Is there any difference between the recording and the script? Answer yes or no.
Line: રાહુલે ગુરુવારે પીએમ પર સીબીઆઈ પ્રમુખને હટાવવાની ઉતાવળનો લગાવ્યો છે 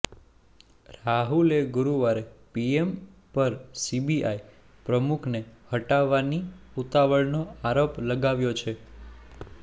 yes